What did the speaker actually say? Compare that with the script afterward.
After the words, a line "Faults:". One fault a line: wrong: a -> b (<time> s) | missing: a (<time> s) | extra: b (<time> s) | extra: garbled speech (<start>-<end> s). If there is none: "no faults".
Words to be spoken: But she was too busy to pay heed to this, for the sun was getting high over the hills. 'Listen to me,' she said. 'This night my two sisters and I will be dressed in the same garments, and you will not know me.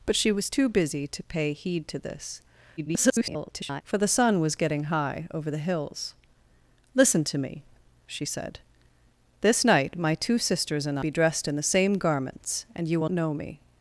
But she was too busy to pay heed to this, [garbled] for the sun was getting high over the hills. 'Listen to me,' she said. 'This night my two sisters and be dressed in the same garments, and you will know me.
Faults:
extra: garbled speech (2.8-3.8 s)
missing: I will (11.0 s)
missing: not (13.1 s)